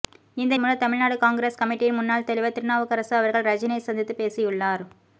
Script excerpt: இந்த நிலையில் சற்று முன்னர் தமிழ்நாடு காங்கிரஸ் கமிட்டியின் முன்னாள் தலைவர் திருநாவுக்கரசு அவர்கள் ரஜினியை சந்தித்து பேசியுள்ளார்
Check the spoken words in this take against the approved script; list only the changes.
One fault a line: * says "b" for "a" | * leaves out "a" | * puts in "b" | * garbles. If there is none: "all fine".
* leaves out "நிலையில் சற்று"